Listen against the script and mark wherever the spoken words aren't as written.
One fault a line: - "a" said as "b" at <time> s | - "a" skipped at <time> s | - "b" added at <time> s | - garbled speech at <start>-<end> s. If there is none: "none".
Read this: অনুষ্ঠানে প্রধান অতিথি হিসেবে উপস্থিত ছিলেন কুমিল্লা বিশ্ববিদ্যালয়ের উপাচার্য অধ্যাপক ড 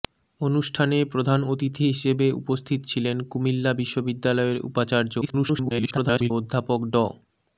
- garbled speech at 5.2-6.3 s